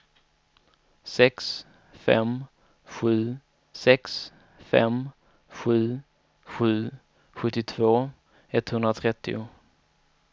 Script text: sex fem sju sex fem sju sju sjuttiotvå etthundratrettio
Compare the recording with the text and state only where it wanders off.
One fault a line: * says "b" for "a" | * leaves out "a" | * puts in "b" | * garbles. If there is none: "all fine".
all fine